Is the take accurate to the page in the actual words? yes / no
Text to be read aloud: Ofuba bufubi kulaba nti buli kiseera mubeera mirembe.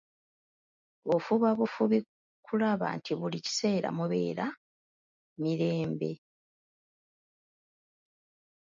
yes